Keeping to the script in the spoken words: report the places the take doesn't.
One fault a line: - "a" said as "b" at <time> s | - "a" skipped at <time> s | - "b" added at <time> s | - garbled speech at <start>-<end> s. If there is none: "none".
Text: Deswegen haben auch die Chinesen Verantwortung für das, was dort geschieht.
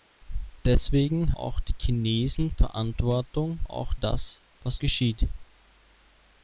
- "haben" skipped at 1.4 s
- "für" said as "auch" at 3.6 s
- "dort" skipped at 4.8 s